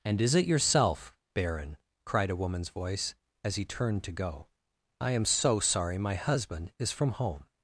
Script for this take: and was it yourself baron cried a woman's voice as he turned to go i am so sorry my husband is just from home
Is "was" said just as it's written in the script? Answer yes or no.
no